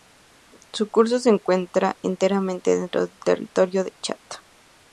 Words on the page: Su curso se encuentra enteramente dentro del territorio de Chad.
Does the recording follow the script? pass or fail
pass